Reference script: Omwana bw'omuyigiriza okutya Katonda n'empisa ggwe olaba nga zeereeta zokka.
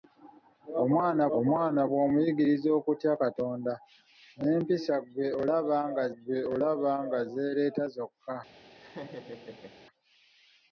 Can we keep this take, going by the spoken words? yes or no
no